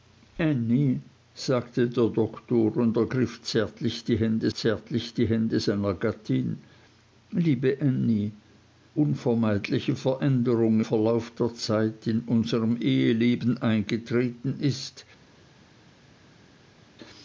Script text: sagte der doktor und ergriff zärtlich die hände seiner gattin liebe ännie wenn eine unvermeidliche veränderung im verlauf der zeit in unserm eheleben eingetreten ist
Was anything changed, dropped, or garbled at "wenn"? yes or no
yes